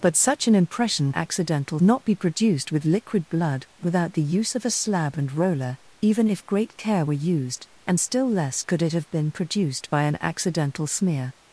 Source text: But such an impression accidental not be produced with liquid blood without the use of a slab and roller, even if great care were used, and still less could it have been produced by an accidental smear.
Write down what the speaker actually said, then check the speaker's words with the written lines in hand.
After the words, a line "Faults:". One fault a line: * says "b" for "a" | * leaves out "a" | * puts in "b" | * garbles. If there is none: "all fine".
But such an impression accidental not be produced with liquid blood without the use of a slab and roller, even if great care were used, and still less could it have been produced by an accidental smear.
Faults:
all fine